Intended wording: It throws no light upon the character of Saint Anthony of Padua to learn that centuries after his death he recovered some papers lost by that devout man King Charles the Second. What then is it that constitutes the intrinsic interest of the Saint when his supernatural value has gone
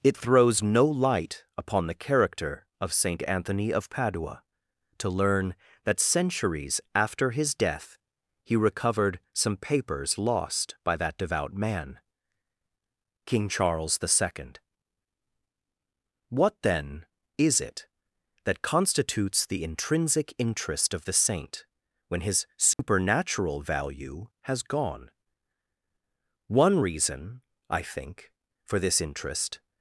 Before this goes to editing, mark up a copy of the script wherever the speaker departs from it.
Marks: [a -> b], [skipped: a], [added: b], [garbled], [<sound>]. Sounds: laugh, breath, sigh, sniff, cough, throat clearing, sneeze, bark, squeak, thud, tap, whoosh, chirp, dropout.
It throws no light upon the character of Saint Anthony of Padua to learn that centuries after his death he recovered some papers lost by that devout man King Charles the Second. What then is it that constitutes the intrinsic interest of the Saint when his supernatural [dropout] value has gone [added: One reason I think for this interest]